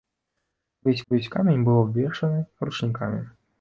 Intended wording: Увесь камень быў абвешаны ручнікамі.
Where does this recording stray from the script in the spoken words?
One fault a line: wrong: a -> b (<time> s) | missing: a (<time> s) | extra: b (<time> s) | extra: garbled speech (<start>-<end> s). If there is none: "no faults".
extra: увесь (1.1 s)